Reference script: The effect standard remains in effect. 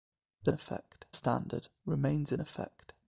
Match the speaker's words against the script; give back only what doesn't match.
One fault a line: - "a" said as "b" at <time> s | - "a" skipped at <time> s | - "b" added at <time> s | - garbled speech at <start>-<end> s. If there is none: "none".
none